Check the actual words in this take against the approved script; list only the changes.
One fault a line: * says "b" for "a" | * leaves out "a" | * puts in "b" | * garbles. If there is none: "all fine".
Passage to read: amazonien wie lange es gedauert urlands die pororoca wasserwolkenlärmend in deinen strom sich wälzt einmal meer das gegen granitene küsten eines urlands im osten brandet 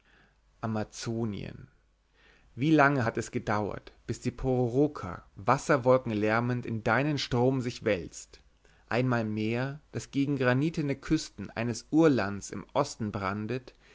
* puts in "hat"
* says "bis" for "urlands"